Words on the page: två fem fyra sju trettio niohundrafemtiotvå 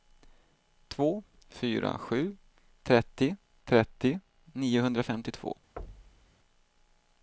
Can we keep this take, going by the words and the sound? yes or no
no